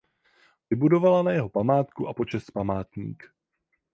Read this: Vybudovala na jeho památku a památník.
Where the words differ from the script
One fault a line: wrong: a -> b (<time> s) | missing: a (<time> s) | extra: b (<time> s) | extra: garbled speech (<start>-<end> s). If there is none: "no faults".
extra: počest (2.1 s)